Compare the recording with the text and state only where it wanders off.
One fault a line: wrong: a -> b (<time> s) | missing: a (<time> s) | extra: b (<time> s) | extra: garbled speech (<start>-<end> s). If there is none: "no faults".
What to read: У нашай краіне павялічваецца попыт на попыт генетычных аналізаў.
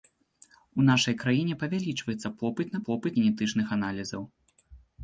no faults